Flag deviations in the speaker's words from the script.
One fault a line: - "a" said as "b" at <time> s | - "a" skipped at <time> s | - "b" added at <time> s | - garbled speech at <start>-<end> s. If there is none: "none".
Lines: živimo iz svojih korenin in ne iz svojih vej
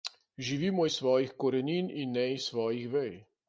none